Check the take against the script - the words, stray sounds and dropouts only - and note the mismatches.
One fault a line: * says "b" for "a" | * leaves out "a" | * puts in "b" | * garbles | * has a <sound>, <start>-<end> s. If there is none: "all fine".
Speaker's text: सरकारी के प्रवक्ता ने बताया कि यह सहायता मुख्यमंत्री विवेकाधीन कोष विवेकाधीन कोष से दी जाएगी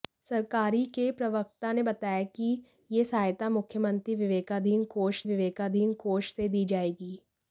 all fine